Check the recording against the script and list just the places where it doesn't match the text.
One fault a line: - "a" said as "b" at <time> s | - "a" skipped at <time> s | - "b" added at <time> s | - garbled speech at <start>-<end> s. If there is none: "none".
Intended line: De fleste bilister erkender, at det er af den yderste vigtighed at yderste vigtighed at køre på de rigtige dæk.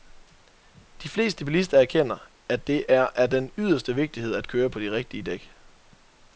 - "yderste vigtighed at" skipped at 4.5 s